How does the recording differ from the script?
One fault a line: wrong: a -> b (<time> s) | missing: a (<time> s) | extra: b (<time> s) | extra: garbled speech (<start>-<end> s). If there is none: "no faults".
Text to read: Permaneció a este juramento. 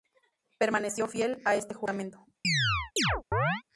extra: fiel (1.1 s)